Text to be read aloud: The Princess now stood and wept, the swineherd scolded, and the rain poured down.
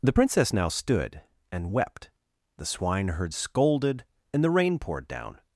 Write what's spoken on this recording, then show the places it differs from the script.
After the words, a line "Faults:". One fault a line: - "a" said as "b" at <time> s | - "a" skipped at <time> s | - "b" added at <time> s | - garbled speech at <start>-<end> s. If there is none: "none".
The Princess now stood and wept, the swineherd scolded, and the rain poured down.
Faults:
none